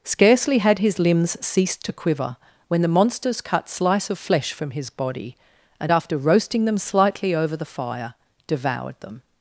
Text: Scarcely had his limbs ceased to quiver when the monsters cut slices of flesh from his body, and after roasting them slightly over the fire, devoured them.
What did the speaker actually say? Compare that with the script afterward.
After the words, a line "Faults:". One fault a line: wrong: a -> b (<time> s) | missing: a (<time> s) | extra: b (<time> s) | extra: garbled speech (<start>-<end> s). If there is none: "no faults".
Scarcely had his limbs ceased to quiver when the monsters cut slice of flesh from his body, and after roasting them slightly over the fire, devoured them.
Faults:
wrong: slices -> slice (3.7 s)